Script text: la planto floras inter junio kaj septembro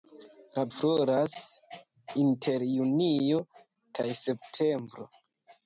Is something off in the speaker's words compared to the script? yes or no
yes